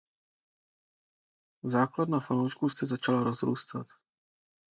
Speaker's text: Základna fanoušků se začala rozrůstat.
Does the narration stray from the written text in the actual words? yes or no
no